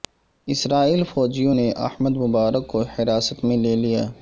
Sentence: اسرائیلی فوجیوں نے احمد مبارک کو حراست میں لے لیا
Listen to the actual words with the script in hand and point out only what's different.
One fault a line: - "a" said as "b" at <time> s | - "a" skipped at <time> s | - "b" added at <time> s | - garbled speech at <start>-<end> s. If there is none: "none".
none